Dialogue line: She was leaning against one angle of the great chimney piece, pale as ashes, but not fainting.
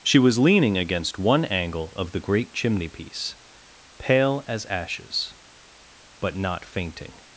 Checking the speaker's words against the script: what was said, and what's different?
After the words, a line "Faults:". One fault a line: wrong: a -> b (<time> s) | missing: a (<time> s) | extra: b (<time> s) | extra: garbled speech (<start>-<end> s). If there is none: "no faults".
She was leaning against one angle of the great chimney piece, pale as ashes, but not fainting.
Faults:
no faults